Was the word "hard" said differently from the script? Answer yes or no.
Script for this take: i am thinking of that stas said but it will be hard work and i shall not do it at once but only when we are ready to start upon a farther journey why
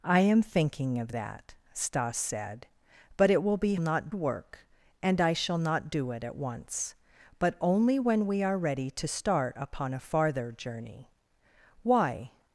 yes